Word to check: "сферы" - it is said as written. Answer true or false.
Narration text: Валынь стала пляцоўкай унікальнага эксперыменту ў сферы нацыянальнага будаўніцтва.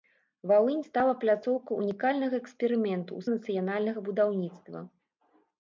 false